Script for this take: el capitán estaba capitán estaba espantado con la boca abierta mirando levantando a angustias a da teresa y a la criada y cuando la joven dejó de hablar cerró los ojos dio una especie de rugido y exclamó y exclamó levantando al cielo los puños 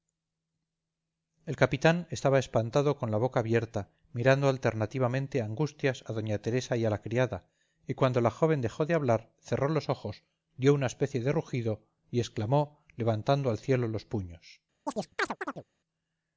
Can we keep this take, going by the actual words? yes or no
no